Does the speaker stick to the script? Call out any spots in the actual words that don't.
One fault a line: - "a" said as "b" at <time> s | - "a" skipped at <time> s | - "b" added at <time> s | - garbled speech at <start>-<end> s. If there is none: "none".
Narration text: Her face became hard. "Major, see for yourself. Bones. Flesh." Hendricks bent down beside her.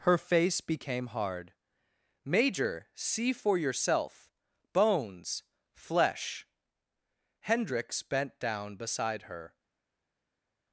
none